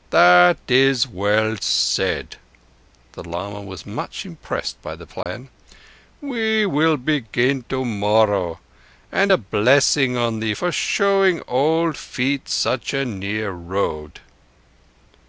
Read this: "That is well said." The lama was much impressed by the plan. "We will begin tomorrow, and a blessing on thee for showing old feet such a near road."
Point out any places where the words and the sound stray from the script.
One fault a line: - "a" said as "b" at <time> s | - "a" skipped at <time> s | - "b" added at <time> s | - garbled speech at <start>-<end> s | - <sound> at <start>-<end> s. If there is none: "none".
- dropout at 5.2-5.3 s